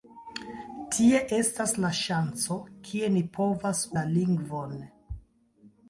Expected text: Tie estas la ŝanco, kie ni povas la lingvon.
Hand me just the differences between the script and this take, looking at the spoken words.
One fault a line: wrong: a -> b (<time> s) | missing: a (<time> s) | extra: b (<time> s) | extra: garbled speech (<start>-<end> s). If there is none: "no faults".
no faults